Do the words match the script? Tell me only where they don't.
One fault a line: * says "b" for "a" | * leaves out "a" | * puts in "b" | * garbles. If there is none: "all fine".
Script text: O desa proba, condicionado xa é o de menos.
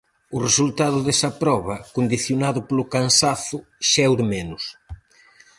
* puts in "resultado"
* puts in "polo cansazo"